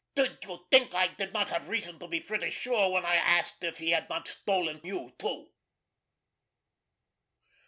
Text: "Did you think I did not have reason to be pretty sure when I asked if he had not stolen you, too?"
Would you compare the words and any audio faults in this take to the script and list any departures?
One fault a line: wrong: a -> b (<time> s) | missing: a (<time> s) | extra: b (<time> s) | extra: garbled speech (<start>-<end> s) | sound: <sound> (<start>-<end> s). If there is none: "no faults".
no faults